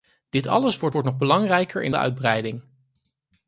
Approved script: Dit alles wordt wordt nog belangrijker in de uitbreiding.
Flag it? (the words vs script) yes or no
no